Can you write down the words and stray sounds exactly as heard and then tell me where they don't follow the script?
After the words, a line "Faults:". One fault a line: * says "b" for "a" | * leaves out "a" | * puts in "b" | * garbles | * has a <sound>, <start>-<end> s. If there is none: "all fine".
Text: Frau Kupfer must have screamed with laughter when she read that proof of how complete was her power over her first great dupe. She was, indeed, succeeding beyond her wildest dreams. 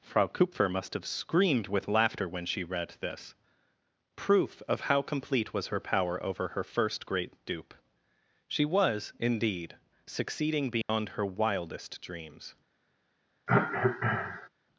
Frau Kupfer must have screamed with laughter when she read this proof of how complete was her power over her first great dupe. She was, indeed, succeeding beyond her wildest dreams.
Faults:
* says "this" for "that"
* has a dropout, 10.8-10.9 s
* has a cough, 13.5-14.5 s